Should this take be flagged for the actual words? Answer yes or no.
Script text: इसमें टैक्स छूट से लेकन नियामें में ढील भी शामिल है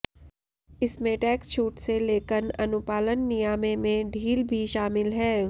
yes